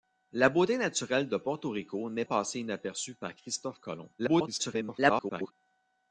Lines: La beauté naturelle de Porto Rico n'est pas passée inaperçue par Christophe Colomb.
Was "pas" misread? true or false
true